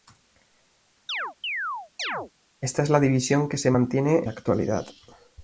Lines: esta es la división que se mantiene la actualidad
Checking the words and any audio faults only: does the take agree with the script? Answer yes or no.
no